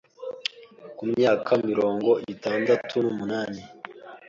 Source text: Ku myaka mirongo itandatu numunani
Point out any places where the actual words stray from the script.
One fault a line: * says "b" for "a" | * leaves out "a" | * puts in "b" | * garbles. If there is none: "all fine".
all fine